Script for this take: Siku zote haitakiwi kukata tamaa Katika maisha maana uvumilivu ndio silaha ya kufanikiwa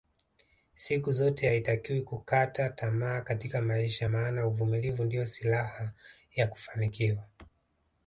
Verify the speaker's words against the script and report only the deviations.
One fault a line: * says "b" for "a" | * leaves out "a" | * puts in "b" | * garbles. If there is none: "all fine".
all fine